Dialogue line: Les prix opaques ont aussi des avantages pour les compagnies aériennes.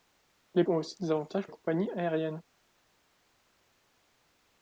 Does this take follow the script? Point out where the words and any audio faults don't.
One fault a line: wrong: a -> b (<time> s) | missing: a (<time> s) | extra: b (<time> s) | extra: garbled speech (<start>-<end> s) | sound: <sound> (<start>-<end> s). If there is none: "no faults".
missing: prix opaques (0.6 s)
missing: pour (1.5 s)